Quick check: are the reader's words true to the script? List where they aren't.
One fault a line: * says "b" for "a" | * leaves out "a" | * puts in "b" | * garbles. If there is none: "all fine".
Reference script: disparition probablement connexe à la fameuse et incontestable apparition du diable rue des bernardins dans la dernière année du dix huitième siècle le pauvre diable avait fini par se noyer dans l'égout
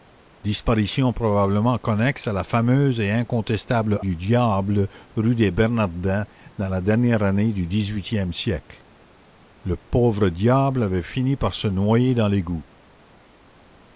* leaves out "apparition"